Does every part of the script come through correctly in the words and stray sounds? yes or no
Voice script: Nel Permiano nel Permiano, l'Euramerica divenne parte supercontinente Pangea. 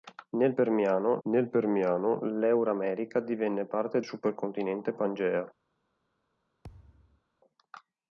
no